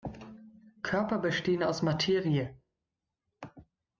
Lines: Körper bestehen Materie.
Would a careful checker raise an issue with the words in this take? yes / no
yes